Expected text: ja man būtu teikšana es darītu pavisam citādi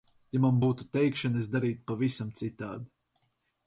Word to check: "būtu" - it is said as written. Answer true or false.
true